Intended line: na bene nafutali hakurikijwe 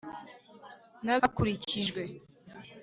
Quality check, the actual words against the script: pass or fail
fail